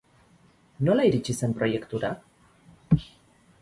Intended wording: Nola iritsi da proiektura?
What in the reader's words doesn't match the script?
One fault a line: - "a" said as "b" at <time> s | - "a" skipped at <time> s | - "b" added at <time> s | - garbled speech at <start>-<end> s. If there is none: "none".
- "da" said as "zen" at 1.4 s